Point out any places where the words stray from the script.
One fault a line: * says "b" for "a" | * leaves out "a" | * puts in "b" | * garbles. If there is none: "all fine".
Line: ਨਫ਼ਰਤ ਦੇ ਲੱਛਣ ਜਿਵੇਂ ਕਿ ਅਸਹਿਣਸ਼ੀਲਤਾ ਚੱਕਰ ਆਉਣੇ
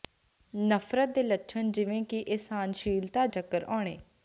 all fine